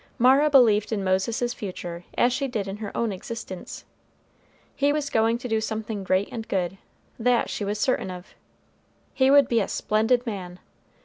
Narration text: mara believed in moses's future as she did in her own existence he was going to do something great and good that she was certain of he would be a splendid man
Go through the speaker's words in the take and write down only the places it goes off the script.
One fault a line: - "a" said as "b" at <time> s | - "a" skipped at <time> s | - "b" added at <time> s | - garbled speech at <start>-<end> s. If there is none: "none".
none